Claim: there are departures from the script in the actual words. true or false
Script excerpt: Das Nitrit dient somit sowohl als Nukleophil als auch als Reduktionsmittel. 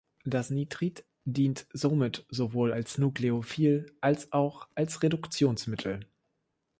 false